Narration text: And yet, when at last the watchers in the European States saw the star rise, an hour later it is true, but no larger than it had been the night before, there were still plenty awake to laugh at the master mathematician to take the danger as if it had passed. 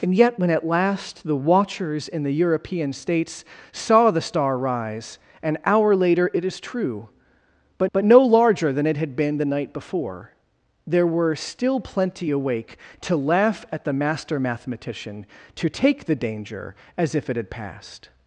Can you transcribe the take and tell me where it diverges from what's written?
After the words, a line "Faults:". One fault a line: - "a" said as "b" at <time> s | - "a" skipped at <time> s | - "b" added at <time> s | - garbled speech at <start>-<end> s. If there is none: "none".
And yet, when at last the watchers in the European States saw the star rise, an hour later it is true, but but no larger than it had been the night before, there were still plenty awake to laugh at the master mathematician to take the danger as if it had passed.
Faults:
- "but" added at 7.9 s